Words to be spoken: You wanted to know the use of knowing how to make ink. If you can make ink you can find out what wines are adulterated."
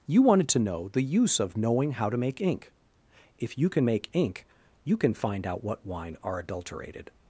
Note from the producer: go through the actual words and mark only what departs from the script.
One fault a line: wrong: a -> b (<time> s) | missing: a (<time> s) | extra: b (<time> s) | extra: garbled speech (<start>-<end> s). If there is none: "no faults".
wrong: wines -> wine (5.9 s)